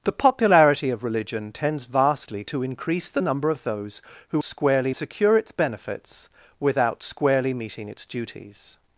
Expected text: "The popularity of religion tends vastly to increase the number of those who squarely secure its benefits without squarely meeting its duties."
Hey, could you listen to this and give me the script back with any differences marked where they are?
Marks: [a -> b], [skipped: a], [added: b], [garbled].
"The popularity of religion tends vastly to increase the number of those who squarely secure its benefits without squarely meeting its duties."